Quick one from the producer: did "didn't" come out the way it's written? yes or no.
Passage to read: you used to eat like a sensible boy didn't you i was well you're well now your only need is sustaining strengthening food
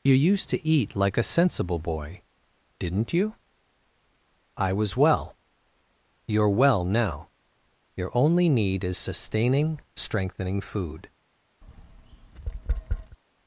yes